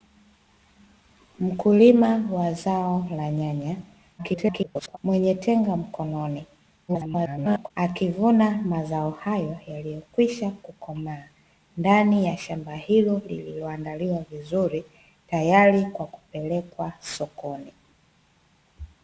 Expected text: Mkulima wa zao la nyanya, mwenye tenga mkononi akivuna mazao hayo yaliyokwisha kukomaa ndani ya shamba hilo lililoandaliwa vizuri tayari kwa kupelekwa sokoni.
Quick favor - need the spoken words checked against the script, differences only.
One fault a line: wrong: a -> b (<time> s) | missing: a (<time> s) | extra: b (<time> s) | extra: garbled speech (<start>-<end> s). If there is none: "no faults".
extra: garbled speech (4.2-5.0 s)
extra: garbled speech (6.9-7.7 s)